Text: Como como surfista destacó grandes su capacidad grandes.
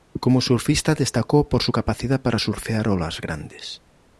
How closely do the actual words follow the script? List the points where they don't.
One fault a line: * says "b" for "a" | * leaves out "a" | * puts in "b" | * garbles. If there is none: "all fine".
* leaves out "como"
* says "por" for "grandes"
* puts in "para surfear olas"